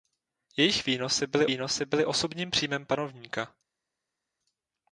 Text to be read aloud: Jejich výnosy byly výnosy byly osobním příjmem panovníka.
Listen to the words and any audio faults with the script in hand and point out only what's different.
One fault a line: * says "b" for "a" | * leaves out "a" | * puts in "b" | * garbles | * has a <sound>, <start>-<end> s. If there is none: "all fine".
all fine